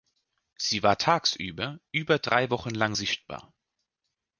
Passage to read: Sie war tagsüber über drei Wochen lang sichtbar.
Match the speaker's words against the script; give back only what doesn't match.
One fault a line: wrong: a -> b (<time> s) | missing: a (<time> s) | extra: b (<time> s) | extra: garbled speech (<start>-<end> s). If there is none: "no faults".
no faults